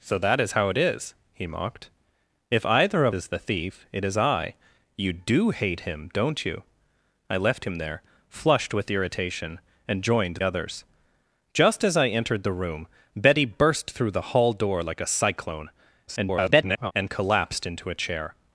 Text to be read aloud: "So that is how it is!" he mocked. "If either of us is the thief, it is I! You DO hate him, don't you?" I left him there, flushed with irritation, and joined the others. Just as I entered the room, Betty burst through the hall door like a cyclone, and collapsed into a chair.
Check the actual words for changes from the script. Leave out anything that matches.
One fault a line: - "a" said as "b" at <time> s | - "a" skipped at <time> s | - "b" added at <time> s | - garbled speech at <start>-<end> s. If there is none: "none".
- "us" skipped at 3.1 s
- "the" skipped at 10.4 s
- garbled speech at 16.1-16.9 s